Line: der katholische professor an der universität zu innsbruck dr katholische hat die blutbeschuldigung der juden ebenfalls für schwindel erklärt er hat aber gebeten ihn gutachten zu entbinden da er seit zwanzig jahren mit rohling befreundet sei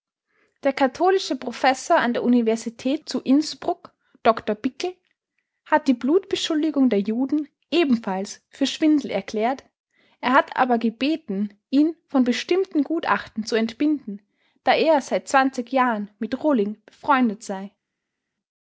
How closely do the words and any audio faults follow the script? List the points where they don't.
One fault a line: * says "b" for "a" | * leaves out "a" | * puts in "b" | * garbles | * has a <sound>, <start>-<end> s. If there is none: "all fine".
* says "bickel" for "katholische"
* puts in "von bestimmten"